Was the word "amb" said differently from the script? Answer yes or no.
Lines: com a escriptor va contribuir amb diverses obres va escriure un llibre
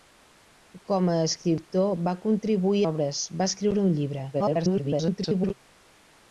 yes